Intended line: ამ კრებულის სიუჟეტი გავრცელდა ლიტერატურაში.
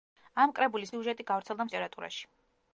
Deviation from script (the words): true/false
false